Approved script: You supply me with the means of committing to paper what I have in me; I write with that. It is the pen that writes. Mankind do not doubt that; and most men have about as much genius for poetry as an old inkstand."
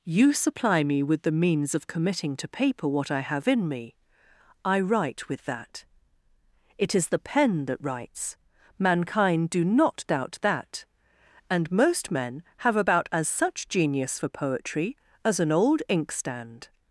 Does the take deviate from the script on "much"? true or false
true